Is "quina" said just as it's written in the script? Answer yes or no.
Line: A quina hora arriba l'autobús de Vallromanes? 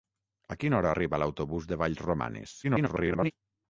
yes